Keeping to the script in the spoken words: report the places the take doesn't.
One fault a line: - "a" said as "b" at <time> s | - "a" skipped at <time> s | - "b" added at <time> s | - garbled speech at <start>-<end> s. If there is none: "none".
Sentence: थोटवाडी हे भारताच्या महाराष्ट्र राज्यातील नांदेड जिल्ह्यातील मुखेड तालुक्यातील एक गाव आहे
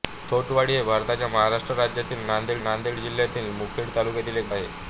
- "नांदेड" added at 2.6 s
- "गाव" skipped at 4.5 s